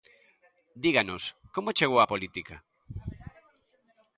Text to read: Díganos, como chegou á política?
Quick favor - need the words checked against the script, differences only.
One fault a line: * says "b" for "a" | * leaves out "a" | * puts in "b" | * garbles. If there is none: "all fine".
all fine